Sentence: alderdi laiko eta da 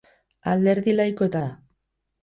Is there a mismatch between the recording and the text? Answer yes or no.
no